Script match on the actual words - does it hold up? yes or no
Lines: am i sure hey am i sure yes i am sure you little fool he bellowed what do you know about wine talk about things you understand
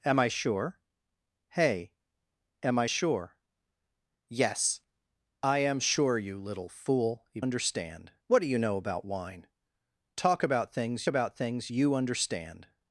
no